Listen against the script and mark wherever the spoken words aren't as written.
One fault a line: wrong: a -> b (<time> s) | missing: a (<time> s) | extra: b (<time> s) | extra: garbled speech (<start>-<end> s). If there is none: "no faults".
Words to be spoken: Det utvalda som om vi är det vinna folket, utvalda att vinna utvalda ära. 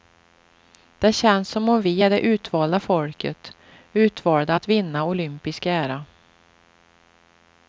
wrong: utvalda -> känns (1.1 s)
wrong: vinna -> utvalda (2.2 s)
wrong: utvalda -> olympisk (5.0 s)